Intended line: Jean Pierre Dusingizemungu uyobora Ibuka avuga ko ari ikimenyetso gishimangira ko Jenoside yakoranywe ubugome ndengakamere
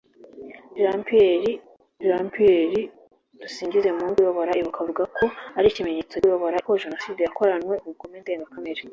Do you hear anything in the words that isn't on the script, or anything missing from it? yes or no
yes